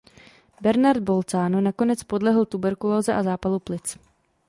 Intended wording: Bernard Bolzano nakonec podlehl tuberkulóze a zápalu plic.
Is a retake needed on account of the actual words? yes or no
no